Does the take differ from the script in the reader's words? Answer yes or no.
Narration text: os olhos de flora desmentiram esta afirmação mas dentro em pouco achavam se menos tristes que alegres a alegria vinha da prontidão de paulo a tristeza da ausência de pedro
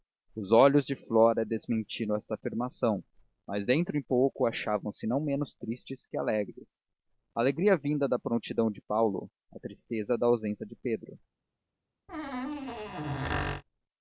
yes